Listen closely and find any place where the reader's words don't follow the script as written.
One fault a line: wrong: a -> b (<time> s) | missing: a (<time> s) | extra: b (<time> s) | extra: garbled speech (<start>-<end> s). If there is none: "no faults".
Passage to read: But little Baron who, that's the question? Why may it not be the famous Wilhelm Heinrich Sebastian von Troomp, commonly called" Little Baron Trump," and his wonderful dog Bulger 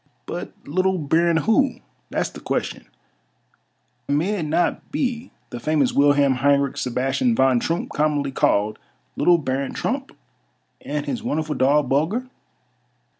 missing: Why (2.9 s)